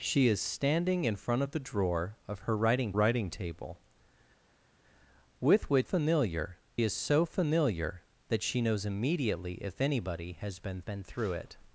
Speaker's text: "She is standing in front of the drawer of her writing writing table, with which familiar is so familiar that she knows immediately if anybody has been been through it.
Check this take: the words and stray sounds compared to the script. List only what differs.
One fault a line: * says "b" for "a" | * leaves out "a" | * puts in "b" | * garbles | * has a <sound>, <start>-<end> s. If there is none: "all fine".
all fine